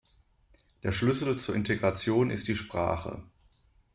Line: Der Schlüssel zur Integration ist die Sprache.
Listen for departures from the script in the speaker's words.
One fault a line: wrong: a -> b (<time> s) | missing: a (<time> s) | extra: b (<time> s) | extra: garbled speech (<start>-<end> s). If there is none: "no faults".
no faults